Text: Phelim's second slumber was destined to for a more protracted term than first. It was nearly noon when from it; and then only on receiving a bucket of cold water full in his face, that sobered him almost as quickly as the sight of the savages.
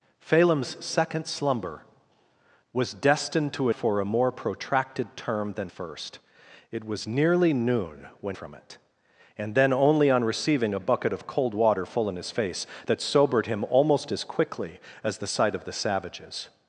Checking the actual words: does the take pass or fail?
pass